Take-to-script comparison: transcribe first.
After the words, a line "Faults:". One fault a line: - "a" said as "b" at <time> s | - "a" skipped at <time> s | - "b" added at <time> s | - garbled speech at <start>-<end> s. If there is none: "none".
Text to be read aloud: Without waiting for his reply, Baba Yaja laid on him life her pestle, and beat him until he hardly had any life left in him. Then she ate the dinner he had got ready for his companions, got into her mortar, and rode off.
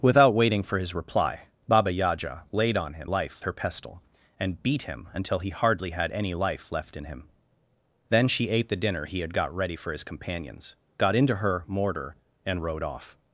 Without waiting for his reply, Baba Yaja laid on him life her pestle, and beat him until he hardly had any life left in him. Then she ate the dinner he had got ready for his companions, got into her mortar, and rode off.
Faults:
none